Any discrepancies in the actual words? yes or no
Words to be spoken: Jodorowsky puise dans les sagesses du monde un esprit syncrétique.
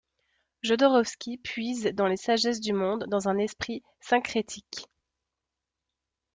yes